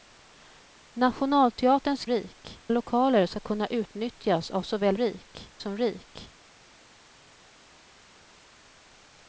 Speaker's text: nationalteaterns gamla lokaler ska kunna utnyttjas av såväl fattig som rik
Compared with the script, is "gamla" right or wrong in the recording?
wrong